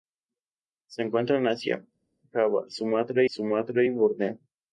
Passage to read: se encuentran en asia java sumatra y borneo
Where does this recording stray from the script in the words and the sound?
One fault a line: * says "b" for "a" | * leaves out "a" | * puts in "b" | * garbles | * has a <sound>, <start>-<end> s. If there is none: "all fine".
* puts in "sumatra"